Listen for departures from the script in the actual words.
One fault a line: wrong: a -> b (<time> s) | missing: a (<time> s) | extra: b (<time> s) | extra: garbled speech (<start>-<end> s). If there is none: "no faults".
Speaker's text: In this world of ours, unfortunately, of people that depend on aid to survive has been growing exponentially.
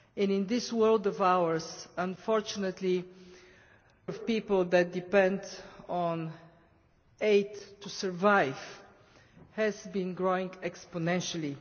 no faults